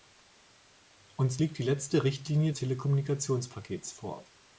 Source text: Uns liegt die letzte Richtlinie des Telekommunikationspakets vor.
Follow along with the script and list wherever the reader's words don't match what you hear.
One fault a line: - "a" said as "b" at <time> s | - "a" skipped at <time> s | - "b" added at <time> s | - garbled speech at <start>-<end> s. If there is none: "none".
- "des" skipped at 2.5 s